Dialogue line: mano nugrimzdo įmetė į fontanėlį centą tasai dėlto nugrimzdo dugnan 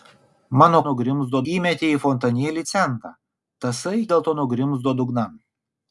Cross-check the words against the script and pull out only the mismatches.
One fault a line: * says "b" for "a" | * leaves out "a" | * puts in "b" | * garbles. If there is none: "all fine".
all fine